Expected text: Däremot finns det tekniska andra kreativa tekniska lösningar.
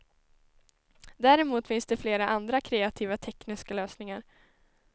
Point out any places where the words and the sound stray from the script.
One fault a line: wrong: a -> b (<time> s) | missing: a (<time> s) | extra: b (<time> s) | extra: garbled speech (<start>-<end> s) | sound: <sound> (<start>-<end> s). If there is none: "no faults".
wrong: tekniska -> flera (2.0 s)